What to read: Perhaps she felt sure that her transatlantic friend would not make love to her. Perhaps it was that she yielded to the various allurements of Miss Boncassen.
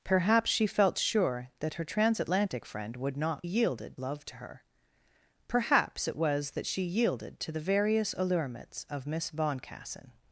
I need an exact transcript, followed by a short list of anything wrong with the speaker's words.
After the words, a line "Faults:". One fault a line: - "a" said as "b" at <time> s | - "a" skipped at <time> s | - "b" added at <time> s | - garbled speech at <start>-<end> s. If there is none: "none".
Perhaps she felt sure that her transatlantic friend would not yielded love to her. Perhaps it was that she yielded to the various allurements of Miss Boncassen.
Faults:
- "make" said as "yielded" at 3.4 s